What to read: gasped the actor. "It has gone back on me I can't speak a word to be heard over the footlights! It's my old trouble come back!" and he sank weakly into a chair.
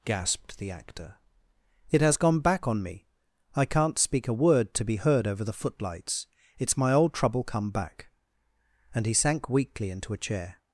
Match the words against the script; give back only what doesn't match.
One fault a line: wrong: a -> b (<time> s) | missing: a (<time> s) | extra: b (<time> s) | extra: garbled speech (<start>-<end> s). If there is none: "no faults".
no faults